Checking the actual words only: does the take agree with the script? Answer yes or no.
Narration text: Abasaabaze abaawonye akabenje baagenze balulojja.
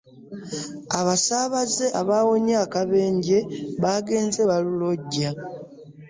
yes